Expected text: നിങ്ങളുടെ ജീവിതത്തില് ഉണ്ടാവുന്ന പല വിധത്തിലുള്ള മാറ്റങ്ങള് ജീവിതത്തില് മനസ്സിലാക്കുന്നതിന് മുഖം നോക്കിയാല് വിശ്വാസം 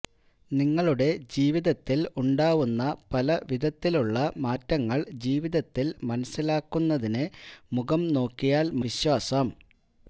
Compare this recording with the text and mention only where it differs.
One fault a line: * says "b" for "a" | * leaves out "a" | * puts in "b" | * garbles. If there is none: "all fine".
all fine